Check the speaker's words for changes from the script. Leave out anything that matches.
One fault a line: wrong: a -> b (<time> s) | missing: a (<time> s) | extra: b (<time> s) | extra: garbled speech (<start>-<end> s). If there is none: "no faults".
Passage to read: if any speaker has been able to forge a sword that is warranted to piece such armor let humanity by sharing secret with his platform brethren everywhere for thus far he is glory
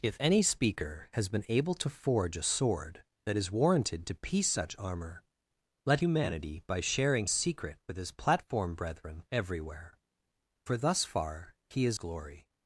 no faults